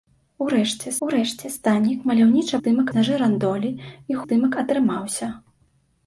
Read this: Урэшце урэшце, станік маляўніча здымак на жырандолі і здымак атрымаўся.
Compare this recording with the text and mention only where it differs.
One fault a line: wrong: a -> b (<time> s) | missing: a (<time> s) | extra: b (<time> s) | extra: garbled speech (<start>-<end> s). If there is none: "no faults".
no faults